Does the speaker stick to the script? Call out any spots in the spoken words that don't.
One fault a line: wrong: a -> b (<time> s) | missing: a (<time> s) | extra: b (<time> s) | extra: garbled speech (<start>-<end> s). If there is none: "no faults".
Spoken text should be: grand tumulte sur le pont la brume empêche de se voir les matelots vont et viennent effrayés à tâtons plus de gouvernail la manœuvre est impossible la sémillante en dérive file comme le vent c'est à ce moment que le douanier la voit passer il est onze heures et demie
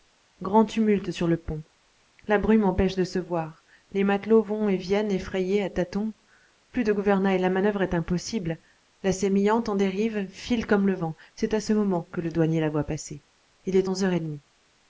no faults